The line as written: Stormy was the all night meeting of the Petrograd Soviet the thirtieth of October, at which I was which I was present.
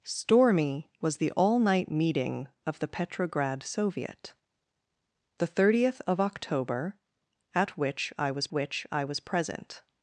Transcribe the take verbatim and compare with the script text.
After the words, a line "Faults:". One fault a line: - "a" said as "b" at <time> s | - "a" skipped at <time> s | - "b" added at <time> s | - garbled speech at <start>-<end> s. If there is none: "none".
Stormy was the all night meeting of the Petrograd Soviet the thirtieth of October, at which I was which I was present.
Faults:
none